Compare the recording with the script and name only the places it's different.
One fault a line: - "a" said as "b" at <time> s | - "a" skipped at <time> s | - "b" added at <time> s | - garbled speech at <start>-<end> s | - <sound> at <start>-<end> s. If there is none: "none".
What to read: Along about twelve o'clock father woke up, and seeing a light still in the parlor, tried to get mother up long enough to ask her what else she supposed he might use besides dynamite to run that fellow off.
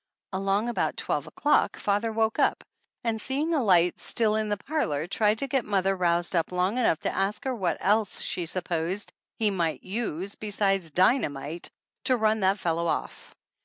- "roused" added at 6.0 s